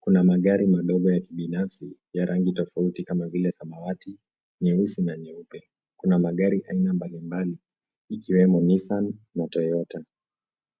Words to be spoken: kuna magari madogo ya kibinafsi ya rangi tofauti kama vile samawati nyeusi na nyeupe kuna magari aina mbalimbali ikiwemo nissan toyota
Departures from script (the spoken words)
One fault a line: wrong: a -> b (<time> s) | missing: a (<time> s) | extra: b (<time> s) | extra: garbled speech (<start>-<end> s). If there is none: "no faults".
extra: na (9.3 s)